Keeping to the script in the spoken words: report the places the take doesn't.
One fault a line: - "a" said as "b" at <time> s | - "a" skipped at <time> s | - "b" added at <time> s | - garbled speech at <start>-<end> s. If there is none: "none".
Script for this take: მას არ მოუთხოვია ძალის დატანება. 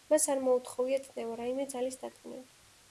- "წნევა რაიმე" added at 1.1 s